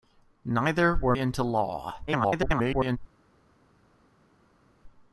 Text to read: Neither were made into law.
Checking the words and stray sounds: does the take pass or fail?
fail